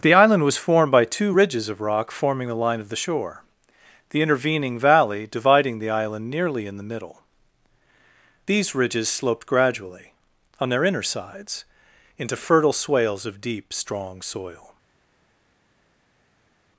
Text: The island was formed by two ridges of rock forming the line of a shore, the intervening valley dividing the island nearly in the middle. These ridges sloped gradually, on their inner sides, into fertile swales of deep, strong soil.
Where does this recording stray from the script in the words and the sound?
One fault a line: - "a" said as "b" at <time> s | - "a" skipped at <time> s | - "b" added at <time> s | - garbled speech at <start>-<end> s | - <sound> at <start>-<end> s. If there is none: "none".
- "a" said as "the" at 2.9 s